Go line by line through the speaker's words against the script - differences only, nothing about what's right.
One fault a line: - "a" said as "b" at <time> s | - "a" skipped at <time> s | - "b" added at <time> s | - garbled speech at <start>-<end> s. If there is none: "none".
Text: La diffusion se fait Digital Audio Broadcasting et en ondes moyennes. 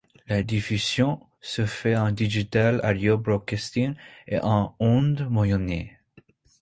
- "en" added at 2.0 s